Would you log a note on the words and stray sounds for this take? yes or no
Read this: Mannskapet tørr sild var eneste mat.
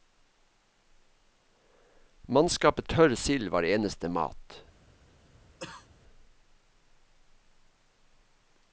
yes